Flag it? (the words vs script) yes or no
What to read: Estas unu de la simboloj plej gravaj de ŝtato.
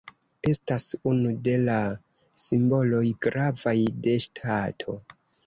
yes